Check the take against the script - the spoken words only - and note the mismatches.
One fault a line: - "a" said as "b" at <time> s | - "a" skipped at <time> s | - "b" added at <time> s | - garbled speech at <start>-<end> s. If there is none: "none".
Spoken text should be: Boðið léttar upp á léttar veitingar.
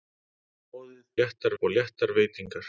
none